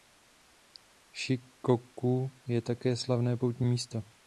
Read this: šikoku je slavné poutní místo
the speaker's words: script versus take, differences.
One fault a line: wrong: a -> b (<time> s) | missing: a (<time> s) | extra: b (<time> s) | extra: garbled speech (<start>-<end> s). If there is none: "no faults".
extra: také (2.6 s)